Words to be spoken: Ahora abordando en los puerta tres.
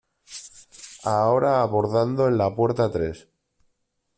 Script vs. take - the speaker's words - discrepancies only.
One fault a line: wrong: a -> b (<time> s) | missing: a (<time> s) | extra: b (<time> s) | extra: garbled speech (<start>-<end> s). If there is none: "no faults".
wrong: los -> la (2.4 s)